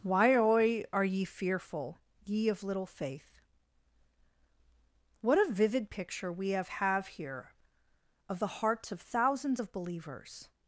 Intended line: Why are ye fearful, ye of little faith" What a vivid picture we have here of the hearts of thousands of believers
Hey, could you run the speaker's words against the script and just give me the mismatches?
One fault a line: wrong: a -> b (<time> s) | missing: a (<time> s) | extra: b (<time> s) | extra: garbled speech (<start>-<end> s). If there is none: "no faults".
extra: have (6.7 s)